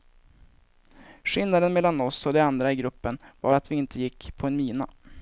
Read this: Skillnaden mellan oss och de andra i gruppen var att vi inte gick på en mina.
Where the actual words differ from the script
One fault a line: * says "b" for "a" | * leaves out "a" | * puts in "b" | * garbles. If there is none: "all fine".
all fine